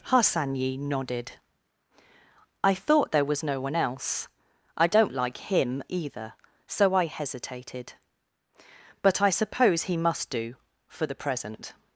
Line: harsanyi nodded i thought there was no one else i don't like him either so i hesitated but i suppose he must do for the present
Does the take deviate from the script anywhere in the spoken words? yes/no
no